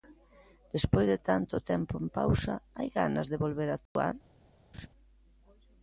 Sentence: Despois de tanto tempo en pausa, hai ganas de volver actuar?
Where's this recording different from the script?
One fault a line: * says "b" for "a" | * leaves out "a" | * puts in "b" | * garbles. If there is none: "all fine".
all fine